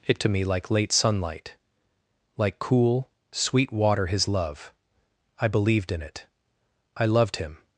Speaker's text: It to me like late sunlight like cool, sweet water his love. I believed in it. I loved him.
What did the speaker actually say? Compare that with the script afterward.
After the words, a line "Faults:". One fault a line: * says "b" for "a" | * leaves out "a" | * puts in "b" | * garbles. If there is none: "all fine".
It to me like late sunlight like cool, sweet water his love. I believed in it. I loved him.
Faults:
all fine